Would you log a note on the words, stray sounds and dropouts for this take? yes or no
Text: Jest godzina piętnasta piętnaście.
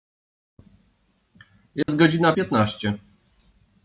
yes